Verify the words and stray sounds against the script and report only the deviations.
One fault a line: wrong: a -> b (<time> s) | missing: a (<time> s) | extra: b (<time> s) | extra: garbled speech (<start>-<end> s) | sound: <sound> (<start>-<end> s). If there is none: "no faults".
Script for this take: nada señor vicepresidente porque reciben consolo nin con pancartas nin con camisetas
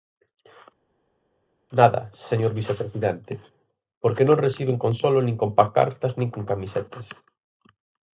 extra: non (4.3 s)